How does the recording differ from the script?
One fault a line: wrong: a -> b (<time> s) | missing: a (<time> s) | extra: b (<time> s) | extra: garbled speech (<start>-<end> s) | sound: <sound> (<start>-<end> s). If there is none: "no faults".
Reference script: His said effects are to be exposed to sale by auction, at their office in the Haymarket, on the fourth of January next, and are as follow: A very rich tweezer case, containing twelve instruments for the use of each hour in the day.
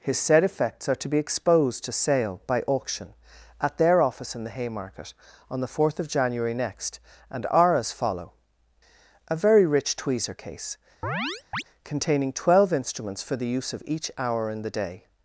sound: chirp (11.0-11.6 s)